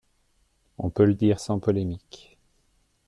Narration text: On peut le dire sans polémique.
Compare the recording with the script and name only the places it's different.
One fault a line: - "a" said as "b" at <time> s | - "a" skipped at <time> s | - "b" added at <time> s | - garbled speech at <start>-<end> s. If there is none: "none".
none